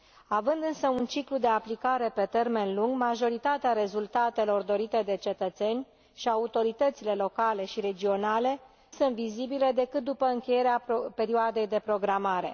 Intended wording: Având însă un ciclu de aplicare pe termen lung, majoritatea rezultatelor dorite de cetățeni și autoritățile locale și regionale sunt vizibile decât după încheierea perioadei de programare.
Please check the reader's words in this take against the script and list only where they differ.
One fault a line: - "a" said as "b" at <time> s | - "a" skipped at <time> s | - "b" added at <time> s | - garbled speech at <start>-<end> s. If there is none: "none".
none